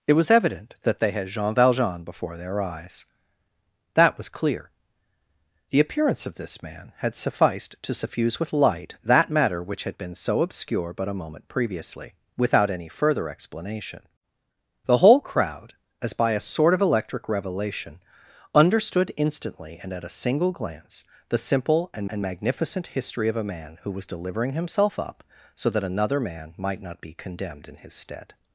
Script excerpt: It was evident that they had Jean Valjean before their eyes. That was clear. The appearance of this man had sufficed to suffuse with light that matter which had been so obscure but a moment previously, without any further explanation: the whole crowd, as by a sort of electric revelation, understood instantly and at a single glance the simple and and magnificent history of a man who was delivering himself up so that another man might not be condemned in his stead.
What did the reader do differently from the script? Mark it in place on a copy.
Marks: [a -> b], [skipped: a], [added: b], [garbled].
It was evident that they had Jean Valjean before their eyes. That was clear. The appearance of this man had sufficed to suffuse with light that matter which had been so obscure but a moment previously, without any further explanation: the whole crowd, as by a sort of electric revelation, understood instantly and at a single glance the simple and and magnificent history of a man who was delivering himself up so that another man might not be condemned in his stead.